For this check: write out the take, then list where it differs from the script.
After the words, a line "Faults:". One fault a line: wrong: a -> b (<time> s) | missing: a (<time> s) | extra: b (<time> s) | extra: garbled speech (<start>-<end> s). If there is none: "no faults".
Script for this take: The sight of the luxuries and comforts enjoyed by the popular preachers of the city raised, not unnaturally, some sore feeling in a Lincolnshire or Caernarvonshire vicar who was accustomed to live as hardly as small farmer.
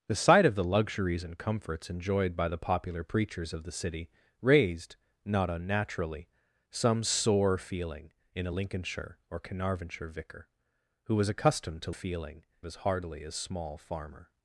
The sight of the luxuries and comforts enjoyed by the popular preachers of the city raised, not unnaturally, some sore feeling in a Lincolnshire or Caernarvonshire vicar who was accustomed to feeling as hardly as small farmer.
Faults:
wrong: live -> feeling (11.9 s)